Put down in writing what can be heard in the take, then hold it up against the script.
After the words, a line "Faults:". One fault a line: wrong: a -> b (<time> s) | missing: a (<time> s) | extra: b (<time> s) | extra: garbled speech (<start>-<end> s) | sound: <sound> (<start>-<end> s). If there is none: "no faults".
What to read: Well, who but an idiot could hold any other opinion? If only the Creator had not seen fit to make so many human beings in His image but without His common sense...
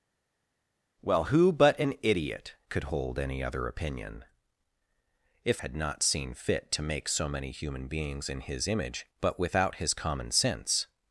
Well, who but an idiot could hold any other opinion? If had not seen fit to make so many human beings in His image but without His common sense...
Faults:
missing: only the Creator (5.6 s)